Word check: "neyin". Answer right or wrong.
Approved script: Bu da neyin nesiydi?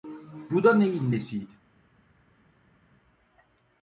right